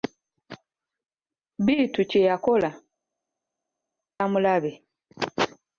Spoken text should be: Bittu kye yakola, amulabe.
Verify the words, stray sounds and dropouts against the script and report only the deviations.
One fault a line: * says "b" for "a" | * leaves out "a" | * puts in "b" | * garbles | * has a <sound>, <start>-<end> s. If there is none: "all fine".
all fine